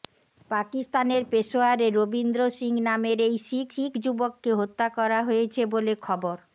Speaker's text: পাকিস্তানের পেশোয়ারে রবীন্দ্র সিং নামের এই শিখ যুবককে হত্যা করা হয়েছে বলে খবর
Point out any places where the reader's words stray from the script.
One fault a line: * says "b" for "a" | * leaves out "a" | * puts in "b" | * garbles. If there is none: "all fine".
* puts in "শিখ"